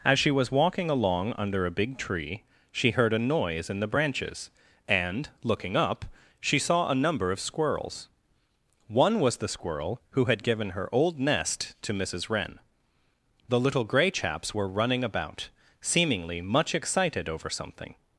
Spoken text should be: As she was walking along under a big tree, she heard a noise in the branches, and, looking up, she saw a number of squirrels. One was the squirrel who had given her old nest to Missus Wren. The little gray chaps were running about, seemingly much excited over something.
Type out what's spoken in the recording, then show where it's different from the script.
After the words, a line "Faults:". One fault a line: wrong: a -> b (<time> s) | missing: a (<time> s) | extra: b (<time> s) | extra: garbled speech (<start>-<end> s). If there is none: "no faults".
As she was walking along under a big tree, she heard a noise in the branches, and, looking up, she saw a number of squirrels. One was the squirrel who had given her old nest to Missus Wren. The little gray chaps were running about, seemingly much excited over something.
Faults:
no faults